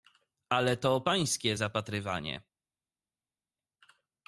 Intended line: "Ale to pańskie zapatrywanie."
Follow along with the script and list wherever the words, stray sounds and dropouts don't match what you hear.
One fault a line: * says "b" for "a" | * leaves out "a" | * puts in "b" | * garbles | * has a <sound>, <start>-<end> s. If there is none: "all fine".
all fine